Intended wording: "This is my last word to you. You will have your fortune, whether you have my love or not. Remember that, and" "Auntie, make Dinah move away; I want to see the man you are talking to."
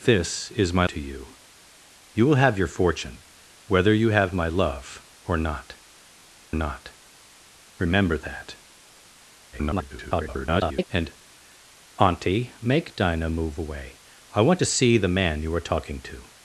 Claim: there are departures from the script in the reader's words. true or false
true